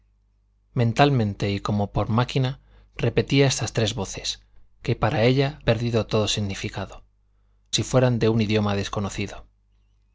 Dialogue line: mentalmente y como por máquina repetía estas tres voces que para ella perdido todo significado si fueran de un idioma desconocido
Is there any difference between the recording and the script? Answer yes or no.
no